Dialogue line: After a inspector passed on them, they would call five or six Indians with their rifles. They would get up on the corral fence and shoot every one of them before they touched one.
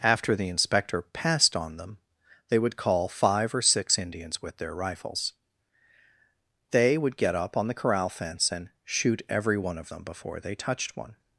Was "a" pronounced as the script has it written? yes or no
no